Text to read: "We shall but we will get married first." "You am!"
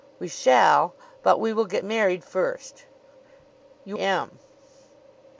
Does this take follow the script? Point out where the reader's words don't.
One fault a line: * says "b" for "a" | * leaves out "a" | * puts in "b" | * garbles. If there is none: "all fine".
all fine